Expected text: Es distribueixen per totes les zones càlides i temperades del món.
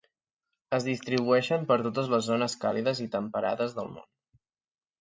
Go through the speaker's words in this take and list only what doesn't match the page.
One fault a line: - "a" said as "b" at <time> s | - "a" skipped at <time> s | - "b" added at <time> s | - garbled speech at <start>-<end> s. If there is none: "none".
none